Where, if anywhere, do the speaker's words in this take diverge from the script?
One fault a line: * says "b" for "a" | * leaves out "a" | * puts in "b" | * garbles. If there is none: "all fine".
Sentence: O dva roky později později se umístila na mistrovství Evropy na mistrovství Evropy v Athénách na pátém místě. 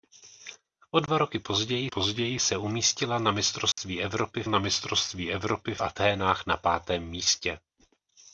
all fine